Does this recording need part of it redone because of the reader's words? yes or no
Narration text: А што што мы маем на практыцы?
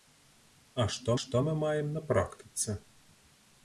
no